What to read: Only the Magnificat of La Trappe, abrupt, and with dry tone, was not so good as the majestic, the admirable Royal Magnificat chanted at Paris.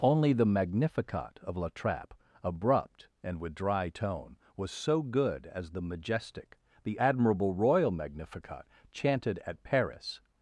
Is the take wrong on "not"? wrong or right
wrong